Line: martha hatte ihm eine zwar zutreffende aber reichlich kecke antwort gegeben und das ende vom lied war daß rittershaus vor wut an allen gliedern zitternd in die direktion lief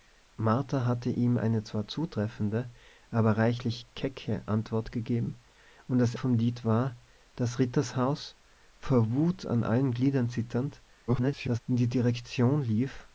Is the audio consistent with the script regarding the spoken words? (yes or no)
no